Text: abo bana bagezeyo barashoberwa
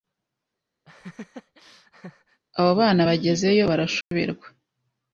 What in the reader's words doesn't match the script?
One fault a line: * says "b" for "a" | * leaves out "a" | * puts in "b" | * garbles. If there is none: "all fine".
all fine